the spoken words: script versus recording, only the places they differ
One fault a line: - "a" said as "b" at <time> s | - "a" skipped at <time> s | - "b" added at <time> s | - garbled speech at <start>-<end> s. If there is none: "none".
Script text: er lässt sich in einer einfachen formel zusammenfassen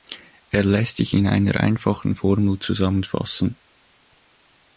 none